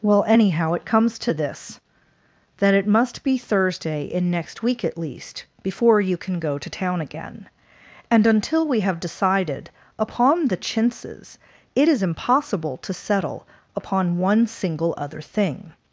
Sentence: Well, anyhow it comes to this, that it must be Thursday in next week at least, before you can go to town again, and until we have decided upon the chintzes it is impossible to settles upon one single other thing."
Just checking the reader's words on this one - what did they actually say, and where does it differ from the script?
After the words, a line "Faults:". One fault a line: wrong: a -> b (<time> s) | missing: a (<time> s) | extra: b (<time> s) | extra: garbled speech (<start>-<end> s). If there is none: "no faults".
Well, anyhow it comes to this, that it must be Thursday in next week at least, before you can go to town again, and until we have decided upon the chintzes it is impossible to settle upon one single other thing."
Faults:
wrong: settles -> settle (12.9 s)